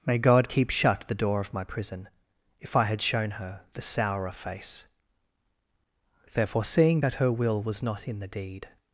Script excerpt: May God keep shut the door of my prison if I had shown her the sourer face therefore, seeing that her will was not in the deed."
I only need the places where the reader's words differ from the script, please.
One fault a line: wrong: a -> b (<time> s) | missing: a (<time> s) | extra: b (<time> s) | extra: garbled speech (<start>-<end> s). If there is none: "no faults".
no faults